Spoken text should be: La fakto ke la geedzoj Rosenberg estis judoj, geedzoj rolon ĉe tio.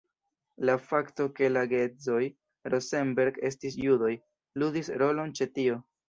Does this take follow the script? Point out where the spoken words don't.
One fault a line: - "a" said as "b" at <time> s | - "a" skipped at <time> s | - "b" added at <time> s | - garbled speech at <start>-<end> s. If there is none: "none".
- "geedzoj" said as "ludis" at 4.6 s